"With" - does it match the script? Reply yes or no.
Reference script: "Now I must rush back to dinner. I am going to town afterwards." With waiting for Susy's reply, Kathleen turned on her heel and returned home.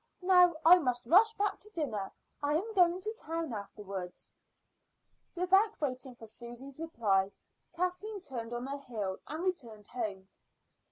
no